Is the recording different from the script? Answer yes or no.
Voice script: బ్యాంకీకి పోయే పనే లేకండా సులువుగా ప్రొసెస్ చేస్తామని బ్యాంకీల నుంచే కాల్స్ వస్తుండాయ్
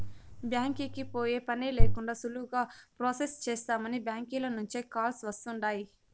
no